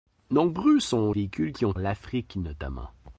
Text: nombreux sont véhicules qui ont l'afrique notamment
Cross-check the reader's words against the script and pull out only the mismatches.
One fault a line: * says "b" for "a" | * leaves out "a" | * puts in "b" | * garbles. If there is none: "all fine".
all fine